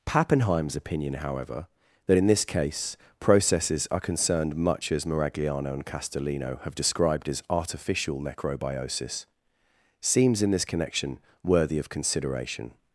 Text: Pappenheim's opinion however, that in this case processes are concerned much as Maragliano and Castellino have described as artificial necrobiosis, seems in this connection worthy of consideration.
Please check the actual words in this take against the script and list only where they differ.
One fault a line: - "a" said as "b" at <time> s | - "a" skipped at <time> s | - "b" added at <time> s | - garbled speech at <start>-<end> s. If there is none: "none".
none